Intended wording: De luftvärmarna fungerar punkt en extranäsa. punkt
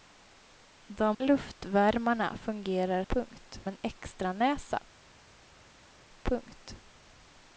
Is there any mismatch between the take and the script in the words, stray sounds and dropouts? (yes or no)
no